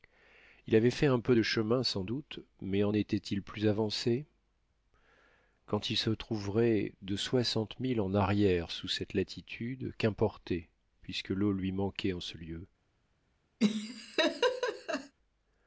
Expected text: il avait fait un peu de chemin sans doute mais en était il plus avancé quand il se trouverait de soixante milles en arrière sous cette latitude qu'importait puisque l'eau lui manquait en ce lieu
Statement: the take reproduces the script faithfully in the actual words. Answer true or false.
true